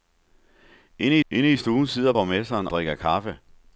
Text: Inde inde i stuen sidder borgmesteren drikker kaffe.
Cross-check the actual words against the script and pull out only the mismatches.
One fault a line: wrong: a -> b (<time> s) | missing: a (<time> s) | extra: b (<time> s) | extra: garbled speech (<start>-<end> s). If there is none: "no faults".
no faults